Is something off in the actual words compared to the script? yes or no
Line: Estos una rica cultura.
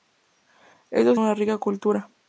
no